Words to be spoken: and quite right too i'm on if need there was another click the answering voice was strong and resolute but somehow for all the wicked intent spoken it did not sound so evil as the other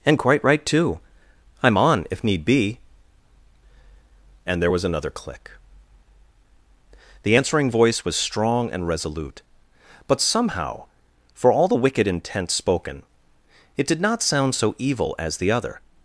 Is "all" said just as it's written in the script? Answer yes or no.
yes